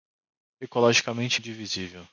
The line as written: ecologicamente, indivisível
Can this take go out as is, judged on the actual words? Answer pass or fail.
pass